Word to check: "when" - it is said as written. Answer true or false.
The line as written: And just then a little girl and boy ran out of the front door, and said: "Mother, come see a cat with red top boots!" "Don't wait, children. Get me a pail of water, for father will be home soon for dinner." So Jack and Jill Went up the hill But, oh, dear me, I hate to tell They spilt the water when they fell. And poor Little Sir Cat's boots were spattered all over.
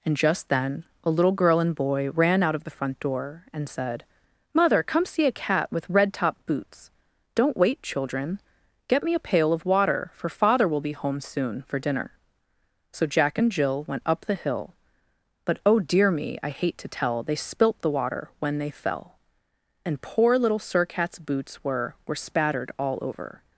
true